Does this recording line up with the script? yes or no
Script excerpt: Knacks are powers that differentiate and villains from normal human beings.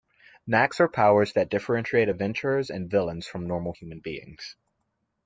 no